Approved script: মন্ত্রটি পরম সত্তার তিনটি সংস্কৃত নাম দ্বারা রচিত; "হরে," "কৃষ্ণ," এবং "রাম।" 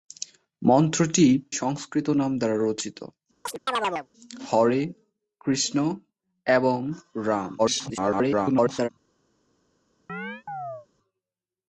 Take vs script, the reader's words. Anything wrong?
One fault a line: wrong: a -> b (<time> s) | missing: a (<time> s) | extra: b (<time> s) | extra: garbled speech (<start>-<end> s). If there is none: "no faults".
missing: পরম সত্তার তিনটি (1.3 s)
extra: garbled speech (7.6-8.9 s)